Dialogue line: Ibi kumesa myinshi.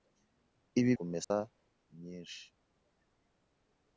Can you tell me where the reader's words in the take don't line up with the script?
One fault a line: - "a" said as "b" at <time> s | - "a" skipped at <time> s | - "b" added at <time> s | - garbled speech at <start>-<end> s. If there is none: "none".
none